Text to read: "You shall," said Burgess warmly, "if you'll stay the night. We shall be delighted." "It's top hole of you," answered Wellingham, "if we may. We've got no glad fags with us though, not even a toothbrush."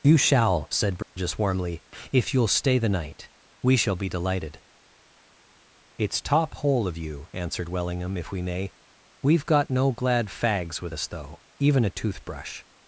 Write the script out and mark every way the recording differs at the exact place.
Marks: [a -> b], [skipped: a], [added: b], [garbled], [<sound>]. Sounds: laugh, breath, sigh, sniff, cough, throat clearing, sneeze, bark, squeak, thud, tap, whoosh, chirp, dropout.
"You shall," said Burgess [dropout] warmly, "if you'll stay the night. We shall be delighted." "It's top hole of you," answered Wellingham, "if we may. We've got no glad fags with us though, [skipped: not] even a toothbrush."